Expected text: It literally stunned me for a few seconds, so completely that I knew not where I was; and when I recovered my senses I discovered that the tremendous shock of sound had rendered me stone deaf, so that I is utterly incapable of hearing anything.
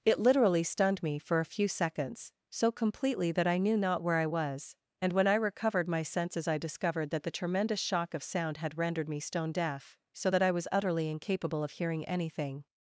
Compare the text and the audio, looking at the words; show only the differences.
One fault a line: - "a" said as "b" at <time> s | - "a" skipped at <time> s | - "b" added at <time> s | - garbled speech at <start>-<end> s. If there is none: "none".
- "is" said as "was" at 10.5 s